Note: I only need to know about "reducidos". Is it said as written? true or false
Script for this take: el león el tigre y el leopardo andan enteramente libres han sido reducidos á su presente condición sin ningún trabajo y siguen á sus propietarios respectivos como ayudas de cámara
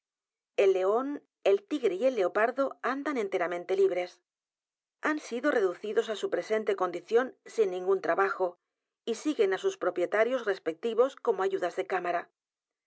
true